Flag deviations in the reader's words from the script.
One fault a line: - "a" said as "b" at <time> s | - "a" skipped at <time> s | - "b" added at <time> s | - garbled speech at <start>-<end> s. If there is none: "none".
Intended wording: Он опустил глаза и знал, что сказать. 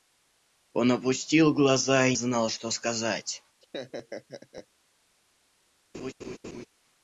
none